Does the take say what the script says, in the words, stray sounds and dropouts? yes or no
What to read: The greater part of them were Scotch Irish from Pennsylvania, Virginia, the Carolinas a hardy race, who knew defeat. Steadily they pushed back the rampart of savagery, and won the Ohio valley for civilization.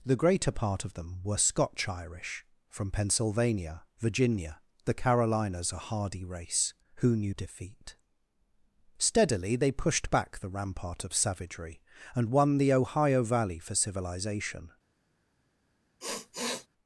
no